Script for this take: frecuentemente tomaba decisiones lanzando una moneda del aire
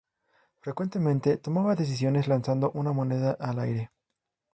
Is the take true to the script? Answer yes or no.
no